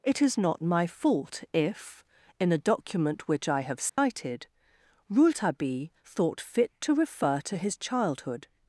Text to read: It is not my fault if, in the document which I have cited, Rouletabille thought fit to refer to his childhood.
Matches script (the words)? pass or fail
fail